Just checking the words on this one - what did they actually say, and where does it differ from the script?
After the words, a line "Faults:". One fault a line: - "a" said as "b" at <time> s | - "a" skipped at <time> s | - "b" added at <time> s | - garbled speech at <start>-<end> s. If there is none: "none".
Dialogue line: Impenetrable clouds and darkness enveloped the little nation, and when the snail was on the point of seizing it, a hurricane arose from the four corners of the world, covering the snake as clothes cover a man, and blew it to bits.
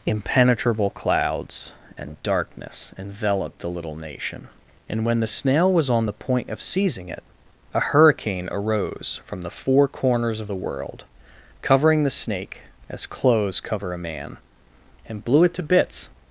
Impenetrable clouds and darkness enveloped the little nation, and when the snail was on the point of seizing it, a hurricane arose from the four corners of the world, covering the snake as clothes cover a man, and blew it to bits.
Faults:
none